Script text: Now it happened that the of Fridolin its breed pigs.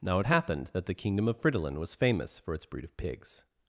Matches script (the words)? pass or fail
fail